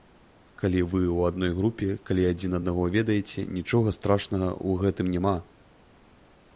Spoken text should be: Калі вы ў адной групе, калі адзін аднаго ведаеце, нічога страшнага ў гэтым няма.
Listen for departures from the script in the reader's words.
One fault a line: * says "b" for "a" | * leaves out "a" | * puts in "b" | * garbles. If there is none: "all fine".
all fine